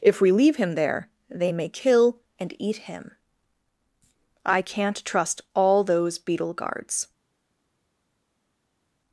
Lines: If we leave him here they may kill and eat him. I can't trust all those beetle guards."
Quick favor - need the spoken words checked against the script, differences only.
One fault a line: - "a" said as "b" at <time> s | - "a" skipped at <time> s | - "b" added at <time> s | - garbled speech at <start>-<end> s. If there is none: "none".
- "here" said as "there" at 0.7 s